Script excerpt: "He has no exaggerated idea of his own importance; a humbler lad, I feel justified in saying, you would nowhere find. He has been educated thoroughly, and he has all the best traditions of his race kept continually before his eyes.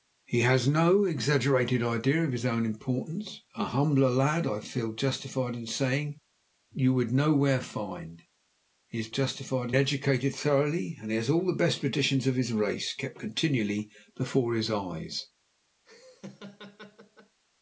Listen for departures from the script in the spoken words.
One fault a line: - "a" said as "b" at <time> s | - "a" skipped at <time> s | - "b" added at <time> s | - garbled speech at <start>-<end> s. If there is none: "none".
- "been" said as "justified" at 9.1 s